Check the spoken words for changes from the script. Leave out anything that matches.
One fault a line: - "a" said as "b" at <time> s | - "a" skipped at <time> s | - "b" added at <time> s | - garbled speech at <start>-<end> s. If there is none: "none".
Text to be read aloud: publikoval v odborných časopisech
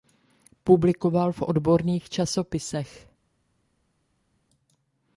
none